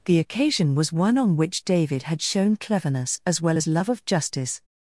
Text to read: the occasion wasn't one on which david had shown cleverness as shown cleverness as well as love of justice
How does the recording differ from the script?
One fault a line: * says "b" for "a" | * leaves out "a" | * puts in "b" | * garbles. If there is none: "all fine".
* says "was" for "wasn't"
* leaves out "shown cleverness as"